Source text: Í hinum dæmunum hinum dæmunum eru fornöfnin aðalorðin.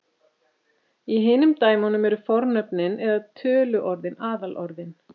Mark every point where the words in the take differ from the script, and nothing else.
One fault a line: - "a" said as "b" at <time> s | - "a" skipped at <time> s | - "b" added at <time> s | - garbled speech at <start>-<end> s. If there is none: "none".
- "hinum dæmunum eru fornöfnin" said as "eru fornöfnin eða töluorðin" at 2.1 s